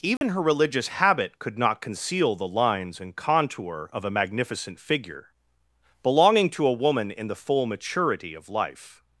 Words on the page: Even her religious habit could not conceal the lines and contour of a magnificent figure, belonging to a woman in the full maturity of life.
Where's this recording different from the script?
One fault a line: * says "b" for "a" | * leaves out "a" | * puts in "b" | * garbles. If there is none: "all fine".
all fine